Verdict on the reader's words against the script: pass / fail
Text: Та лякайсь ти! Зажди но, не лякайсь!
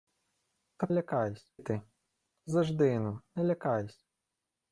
pass